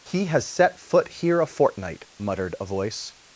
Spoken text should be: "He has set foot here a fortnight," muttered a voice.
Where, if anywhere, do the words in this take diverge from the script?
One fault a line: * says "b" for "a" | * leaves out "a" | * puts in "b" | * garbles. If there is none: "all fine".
all fine